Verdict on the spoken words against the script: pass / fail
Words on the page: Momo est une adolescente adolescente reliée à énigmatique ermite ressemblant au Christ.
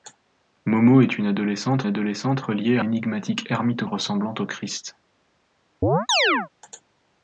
pass